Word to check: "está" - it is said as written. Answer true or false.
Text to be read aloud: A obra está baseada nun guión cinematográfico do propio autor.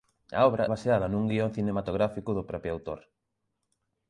false